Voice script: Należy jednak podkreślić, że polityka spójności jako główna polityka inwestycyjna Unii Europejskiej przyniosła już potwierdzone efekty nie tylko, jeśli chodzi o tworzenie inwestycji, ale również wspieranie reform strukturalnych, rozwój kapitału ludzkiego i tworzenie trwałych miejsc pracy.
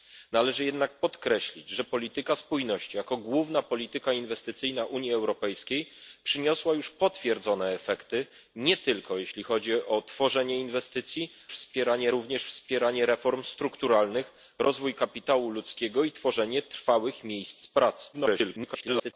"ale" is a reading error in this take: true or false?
true